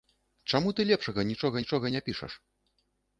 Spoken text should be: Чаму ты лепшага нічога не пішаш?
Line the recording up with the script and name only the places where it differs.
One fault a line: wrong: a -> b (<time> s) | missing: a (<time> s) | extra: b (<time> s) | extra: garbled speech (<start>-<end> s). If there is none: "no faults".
extra: нічога (1.6 s)